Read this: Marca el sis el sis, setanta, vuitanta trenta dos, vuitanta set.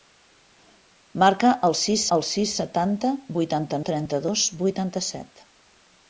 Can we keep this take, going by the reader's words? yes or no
yes